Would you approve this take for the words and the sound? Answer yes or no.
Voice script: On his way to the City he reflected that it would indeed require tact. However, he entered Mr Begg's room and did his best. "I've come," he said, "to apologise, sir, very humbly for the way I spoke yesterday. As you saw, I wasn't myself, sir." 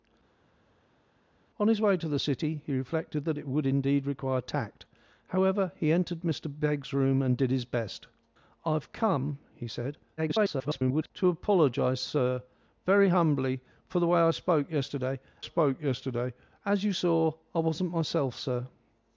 no